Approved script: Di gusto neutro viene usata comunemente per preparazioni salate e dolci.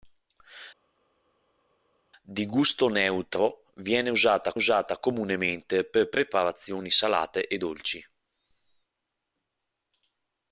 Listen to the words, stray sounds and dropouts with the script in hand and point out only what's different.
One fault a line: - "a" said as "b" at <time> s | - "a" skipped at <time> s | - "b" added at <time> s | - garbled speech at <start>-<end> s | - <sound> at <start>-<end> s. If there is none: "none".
- "usata" added at 4.5 s